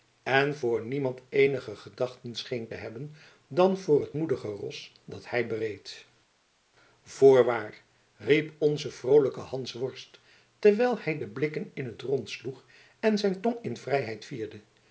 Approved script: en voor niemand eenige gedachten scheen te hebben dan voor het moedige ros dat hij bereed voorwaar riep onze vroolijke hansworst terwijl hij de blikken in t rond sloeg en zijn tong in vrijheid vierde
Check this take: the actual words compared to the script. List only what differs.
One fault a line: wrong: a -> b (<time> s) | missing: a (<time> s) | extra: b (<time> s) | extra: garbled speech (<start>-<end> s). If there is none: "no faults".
no faults